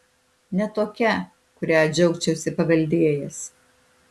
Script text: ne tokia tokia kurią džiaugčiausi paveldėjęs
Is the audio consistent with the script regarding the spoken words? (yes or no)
no